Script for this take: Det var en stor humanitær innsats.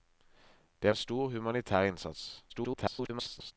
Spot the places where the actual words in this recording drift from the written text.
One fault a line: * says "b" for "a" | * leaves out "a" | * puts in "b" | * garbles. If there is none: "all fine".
* leaves out "var"
* garbles